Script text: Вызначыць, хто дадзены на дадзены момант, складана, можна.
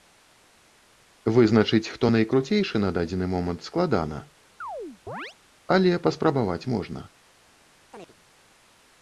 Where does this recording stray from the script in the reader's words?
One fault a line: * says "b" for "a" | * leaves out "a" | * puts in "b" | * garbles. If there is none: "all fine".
* says "найкруцейшы" for "дадзены"
* puts in "але паспрабаваць"